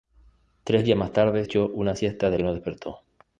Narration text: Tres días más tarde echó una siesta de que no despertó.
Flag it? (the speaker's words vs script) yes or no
no